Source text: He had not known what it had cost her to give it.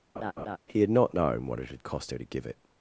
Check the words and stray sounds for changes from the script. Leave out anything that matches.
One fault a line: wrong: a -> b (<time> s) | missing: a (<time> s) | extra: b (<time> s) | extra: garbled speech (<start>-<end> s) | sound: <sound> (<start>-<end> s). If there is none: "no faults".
sound: laugh (0.2-0.6 s)